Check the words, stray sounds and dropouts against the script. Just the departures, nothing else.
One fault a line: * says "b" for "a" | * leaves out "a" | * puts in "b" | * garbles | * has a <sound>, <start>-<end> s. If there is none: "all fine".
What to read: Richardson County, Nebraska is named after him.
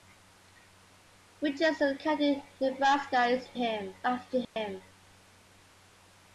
* says "him" for "named"
* has a dropout, 4.4-4.6 s